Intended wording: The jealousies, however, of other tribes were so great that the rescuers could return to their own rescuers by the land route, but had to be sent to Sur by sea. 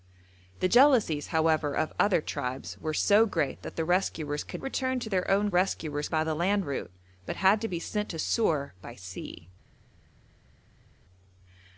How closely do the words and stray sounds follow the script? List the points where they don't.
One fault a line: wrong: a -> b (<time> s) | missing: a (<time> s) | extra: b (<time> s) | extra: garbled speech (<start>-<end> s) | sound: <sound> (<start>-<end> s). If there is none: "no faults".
no faults